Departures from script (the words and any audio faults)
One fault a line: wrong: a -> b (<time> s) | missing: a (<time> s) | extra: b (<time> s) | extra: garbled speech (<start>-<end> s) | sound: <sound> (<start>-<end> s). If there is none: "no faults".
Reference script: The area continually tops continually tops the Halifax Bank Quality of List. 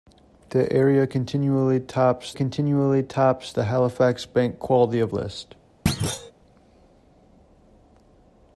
sound: thud (5.9-6.3 s)